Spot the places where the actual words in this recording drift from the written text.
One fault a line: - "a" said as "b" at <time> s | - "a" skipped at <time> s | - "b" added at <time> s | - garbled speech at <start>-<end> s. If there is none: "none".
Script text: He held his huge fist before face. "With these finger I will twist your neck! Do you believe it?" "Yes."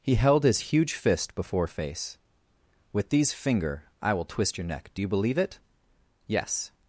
none